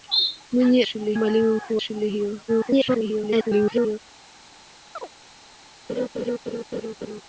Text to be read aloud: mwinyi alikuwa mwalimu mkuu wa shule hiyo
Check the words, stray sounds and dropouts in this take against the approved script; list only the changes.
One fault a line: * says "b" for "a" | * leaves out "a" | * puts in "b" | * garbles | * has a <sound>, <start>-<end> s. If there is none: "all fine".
* says "shule" for "alikuwa"
* leaves out "wa"
* garbles
* has a chirp, 5.0-5.1 s
* has a laugh, 5.9-7.2 s